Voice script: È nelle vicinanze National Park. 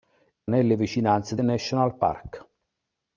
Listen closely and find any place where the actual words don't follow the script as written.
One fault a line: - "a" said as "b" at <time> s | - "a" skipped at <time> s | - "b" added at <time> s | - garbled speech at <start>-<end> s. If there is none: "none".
none